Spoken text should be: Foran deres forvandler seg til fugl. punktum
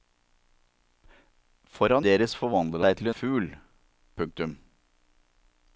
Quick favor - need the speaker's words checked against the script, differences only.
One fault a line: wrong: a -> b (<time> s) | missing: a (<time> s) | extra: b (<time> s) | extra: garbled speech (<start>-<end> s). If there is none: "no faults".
no faults